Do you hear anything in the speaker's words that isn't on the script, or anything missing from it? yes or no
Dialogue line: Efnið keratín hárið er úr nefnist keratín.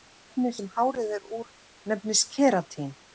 yes